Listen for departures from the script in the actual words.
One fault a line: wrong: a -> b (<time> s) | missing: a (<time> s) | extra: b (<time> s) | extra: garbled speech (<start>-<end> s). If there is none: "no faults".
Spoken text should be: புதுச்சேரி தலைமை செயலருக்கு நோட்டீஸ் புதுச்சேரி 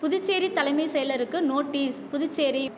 no faults